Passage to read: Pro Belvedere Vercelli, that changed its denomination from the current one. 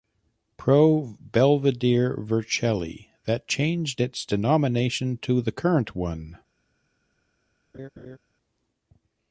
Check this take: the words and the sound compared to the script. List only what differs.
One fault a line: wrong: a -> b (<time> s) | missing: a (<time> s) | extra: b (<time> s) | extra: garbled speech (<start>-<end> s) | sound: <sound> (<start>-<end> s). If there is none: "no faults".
wrong: from -> to (5.2 s)
sound: laugh (7.7-8.2 s)